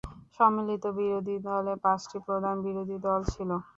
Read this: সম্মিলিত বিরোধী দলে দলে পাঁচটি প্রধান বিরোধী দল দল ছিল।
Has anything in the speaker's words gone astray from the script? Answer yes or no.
yes